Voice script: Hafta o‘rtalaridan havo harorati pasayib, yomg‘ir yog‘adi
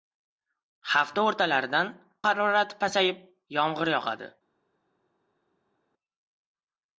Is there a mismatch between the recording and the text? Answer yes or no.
yes